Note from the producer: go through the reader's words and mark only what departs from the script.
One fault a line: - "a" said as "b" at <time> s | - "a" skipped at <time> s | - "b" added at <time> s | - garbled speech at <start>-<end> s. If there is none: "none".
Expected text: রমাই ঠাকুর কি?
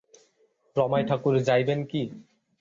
- "যাইবেন" added at 1.5 s